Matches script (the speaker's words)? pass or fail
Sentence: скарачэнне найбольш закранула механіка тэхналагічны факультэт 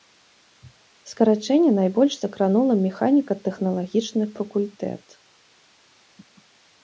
pass